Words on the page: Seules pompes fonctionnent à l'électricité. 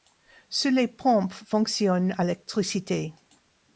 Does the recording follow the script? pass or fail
fail